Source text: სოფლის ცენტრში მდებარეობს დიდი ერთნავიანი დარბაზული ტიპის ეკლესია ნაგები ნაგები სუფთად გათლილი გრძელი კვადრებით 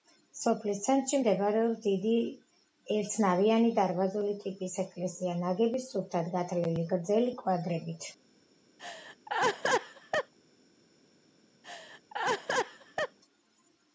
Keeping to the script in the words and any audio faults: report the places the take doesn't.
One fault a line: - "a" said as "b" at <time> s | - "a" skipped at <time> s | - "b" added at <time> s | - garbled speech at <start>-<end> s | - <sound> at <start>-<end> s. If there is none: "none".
- "ნაგები" skipped at 5.8 s
- laugh at 8.8-10.3 s
- laugh at 11.6-13.2 s